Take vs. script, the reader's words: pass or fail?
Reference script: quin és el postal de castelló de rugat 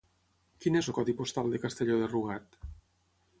fail